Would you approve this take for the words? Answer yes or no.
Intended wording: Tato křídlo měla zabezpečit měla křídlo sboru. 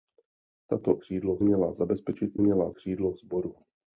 yes